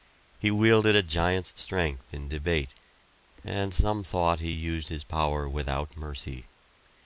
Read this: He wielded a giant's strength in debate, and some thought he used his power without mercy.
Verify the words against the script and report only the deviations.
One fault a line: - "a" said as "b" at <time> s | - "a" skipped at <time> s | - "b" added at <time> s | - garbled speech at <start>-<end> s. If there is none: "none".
none